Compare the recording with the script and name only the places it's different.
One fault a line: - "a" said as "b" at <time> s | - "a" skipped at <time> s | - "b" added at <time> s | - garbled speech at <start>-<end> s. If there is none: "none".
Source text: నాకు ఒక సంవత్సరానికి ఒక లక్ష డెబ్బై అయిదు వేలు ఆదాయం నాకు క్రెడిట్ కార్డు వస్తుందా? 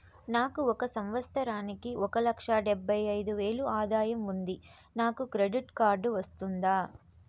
- "ఉంది" added at 4.3 s